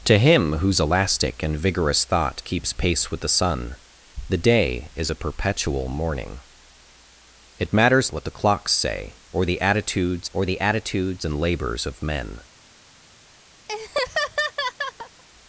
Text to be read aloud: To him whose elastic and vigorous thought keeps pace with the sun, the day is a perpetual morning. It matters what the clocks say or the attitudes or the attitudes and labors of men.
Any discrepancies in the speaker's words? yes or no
no